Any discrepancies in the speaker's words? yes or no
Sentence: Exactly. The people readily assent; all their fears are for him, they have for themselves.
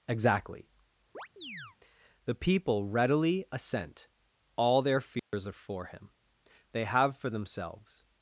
no